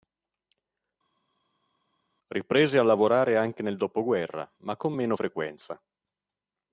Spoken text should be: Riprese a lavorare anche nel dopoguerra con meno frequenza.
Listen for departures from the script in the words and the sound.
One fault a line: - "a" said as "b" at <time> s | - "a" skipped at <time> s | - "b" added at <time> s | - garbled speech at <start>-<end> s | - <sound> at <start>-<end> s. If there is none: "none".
- "ma" added at 4.6 s